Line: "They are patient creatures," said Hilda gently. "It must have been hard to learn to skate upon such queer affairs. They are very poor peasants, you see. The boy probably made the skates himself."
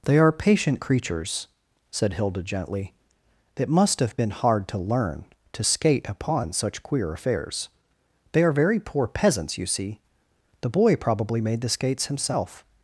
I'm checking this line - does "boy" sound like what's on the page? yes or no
yes